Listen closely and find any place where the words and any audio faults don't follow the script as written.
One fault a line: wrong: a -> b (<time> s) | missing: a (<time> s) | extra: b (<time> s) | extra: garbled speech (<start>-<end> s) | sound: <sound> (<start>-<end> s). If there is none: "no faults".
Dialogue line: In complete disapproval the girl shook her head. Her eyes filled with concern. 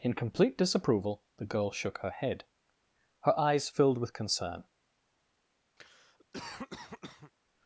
sound: cough (5.8-7.3 s)